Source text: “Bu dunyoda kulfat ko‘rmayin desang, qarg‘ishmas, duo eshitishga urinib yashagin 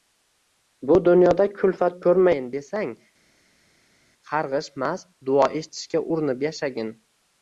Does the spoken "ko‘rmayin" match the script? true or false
true